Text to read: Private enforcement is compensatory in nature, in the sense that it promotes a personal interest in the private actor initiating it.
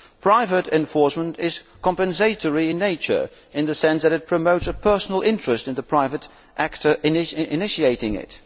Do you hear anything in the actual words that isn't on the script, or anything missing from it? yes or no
no